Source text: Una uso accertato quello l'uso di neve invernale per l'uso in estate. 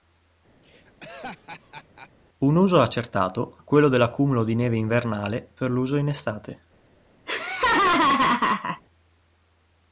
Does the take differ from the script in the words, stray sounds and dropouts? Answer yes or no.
yes